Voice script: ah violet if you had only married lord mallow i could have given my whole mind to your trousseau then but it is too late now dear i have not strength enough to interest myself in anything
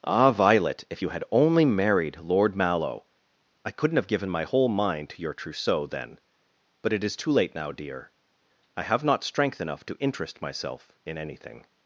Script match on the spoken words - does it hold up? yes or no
no